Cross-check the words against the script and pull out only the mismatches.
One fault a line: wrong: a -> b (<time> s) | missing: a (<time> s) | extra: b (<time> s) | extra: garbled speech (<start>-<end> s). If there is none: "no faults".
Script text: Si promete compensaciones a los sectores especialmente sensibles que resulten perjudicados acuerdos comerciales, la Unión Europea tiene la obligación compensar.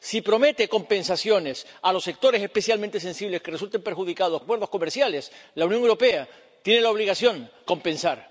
no faults